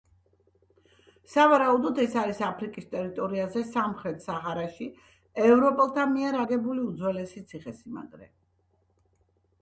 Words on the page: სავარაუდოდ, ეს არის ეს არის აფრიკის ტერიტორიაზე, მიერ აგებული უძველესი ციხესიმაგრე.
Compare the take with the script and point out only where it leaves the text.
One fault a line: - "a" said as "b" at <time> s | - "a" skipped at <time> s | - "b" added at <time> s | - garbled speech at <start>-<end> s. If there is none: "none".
- "ეს არის აფრიკის ტერიტორიაზე" said as "აფრიკის ტერიტორიაზე სამხრეთ საჰარაში ევროპელთა" at 2.5 s